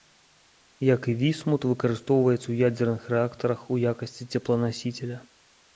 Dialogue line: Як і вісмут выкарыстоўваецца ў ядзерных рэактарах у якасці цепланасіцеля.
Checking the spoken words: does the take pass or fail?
pass